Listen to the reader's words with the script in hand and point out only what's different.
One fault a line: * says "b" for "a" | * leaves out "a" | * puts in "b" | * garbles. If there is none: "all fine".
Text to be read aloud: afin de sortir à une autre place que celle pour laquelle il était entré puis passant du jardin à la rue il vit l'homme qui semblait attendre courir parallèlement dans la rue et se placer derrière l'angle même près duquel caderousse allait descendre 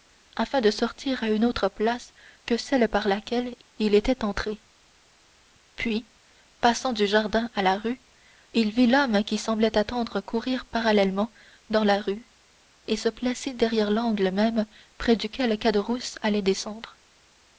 * says "par" for "pour"